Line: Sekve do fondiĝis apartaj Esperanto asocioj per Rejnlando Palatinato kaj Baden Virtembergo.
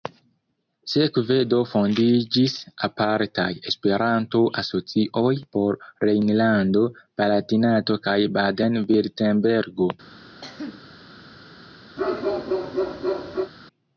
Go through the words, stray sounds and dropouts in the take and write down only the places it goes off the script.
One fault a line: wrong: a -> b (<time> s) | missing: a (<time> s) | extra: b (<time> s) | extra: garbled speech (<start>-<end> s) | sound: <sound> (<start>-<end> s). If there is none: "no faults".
wrong: per -> por (5.6 s)
sound: cough (10.4-10.9 s)
sound: bark (12.0-13.5 s)